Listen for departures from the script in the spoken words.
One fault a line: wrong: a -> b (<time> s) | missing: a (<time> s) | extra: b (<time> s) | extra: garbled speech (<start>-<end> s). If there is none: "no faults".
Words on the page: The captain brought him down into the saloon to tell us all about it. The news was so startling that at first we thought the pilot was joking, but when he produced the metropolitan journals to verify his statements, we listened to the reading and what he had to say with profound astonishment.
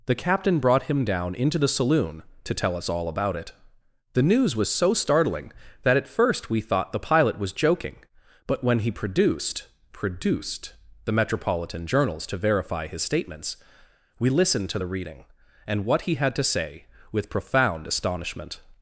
extra: produced (9.9 s)